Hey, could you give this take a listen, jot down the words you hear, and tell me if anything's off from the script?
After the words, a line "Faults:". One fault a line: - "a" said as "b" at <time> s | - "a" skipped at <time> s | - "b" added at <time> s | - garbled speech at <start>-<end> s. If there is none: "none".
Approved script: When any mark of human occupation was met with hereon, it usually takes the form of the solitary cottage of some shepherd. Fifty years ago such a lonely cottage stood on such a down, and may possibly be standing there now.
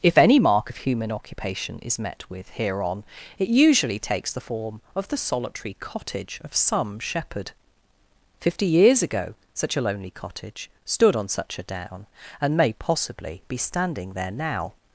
If any mark of human occupation is met with hereon, it usually takes the form of the solitary cottage of some shepherd. Fifty years ago such a lonely cottage stood on such a down, and may possibly be standing there now.
Faults:
- "When" said as "If" at 0.0 s
- "was" said as "is" at 1.8 s